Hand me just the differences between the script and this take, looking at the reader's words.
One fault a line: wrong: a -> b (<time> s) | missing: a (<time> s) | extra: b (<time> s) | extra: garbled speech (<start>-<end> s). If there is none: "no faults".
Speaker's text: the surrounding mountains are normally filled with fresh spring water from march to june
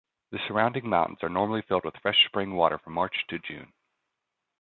no faults